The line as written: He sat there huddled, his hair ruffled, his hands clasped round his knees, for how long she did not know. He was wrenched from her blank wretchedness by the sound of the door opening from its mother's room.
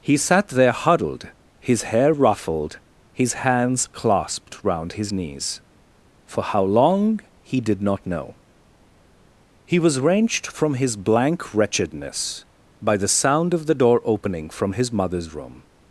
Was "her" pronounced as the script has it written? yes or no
no